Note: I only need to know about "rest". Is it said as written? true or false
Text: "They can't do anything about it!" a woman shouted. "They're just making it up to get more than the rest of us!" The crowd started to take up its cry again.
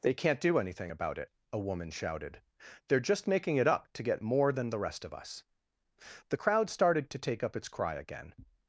true